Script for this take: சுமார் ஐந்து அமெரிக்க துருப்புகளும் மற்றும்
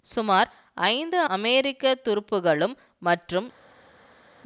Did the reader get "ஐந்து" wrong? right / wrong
right